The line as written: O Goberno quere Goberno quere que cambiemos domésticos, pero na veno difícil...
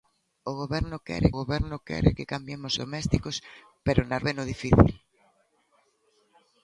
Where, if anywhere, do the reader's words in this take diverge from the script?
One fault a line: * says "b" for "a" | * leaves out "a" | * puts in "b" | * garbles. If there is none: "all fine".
all fine